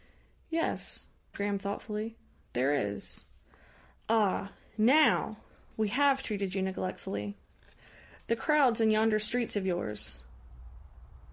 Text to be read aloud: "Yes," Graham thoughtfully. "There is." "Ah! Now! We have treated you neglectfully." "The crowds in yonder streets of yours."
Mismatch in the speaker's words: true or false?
false